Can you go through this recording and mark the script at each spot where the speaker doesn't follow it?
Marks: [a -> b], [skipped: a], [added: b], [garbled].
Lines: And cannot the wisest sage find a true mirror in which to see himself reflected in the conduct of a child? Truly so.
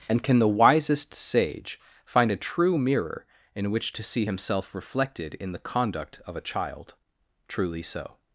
And [cannot -> can] the wisest sage find a true mirror in which to see himself reflected in the conduct of a child? Truly so.